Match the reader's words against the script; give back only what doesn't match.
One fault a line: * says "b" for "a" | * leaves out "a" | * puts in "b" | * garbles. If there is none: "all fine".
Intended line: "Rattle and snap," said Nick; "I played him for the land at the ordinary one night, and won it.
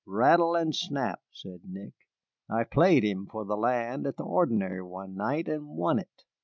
all fine